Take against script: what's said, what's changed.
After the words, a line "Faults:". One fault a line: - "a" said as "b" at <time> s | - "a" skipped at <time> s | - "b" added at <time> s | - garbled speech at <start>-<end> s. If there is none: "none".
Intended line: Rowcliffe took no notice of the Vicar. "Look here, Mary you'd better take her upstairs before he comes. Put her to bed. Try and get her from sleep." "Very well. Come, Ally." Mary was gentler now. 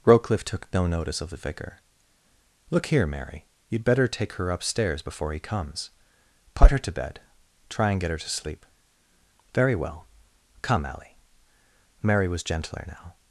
Rowcliffe took no notice of the Vicar. "Look here, Mary you'd better take her upstairs before he comes. Put her to bed. Try and get her to sleep." "Very well. Come, Ally." Mary was gentler now.
Faults:
- "from" said as "to" at 8.2 s